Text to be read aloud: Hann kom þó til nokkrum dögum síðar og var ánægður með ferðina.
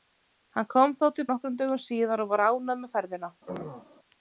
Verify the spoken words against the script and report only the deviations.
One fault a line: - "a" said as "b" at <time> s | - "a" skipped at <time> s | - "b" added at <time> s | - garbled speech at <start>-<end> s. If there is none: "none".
none